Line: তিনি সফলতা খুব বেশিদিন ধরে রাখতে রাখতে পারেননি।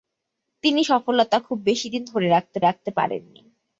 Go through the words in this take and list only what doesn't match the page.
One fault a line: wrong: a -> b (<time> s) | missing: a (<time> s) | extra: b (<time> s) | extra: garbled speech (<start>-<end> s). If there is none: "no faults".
no faults